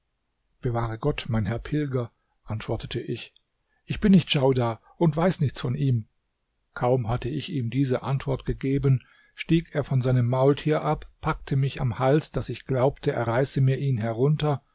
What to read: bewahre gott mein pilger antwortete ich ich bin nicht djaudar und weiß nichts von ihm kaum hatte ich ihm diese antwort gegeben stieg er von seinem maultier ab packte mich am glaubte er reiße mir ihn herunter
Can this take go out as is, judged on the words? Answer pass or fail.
fail